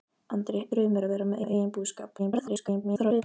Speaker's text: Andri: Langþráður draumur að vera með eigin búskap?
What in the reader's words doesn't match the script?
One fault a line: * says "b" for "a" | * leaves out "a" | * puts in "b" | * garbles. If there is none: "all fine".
* leaves out "Langþráður"
* puts in "með"
* garbles